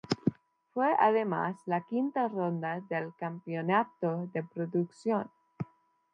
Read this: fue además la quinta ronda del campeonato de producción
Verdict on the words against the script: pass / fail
pass